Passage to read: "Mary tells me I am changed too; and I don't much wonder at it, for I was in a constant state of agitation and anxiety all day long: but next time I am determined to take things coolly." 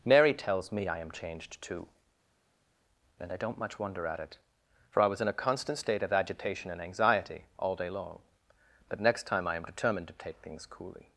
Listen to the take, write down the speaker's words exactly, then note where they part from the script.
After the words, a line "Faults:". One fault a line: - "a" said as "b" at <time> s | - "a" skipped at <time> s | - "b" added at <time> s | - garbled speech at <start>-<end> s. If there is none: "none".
"Mary tells me I am changed too; and I don't much wonder at it, for I was in a constant state of agitation and anxiety all day long: but next time I am determined to take things coolly."
Faults:
none